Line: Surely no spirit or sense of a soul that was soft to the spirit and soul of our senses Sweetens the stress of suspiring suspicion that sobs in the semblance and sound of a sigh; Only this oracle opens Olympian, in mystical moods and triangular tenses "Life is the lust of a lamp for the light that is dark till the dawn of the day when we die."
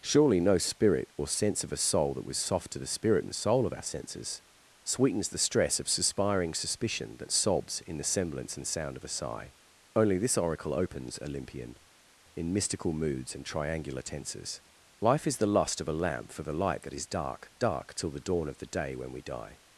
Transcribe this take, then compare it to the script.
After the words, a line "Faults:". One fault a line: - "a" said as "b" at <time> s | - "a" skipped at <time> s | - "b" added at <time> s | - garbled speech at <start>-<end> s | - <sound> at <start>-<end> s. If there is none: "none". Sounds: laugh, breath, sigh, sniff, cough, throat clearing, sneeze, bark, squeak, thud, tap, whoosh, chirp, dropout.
Surely no spirit or sense of a soul that was soft to the spirit and soul of our senses Sweetens the stress of suspiring suspicion that sobs in the semblance and sound of a sigh; Only this oracle opens Olympian, in mystical moods and triangular tenses "Life is the lust of a lamp for the light that is dark dark till the dawn of the day when we die."
Faults:
- "dark" added at 17.6 s